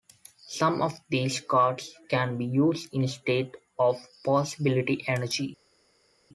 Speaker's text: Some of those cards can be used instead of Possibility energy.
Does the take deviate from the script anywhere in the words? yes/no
yes